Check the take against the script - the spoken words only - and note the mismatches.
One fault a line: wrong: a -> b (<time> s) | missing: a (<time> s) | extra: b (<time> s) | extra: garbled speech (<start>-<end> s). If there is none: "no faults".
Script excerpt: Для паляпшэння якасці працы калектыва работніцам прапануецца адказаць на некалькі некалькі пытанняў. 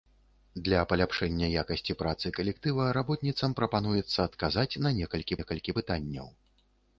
no faults